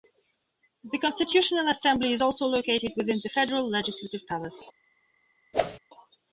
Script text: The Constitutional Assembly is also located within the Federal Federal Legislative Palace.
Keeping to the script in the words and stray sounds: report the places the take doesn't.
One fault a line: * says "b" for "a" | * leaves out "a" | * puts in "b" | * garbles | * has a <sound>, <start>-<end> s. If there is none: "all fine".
* leaves out "Federal"
* has a whoosh, 5.5-5.8 s